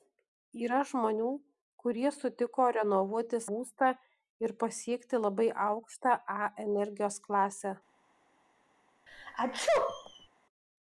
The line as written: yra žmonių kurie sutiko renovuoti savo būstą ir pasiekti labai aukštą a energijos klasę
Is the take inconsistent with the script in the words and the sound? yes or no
yes